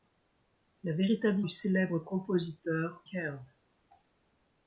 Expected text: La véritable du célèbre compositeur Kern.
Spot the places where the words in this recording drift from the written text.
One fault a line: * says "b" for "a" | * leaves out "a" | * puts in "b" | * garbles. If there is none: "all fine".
all fine